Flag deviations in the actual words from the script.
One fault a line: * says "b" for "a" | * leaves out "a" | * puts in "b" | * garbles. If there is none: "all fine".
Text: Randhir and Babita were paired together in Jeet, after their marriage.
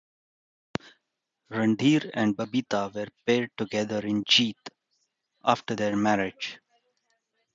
all fine